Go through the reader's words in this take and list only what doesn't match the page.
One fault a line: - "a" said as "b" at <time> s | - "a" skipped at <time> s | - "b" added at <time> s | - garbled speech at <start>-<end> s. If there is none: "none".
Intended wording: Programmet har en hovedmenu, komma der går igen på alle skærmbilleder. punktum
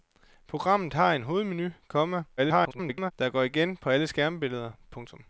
- garbled speech at 2.4-3.1 s